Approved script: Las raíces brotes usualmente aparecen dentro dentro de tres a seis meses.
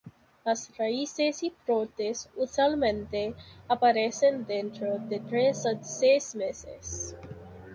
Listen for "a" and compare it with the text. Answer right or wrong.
right